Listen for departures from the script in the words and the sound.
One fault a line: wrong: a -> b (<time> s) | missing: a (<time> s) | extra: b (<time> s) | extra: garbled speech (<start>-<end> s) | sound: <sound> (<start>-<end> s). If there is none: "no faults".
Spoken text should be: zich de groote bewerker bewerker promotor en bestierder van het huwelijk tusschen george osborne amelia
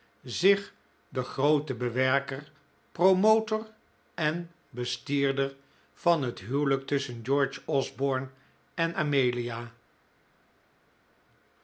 missing: bewerker (2.5 s)
extra: en (8.7 s)